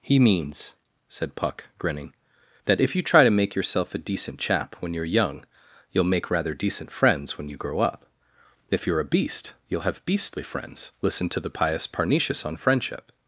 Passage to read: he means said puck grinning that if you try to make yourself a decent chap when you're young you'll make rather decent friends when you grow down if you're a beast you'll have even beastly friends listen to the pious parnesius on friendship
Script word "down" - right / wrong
wrong